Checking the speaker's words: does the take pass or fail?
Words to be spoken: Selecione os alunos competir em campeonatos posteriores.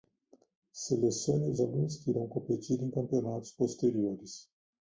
fail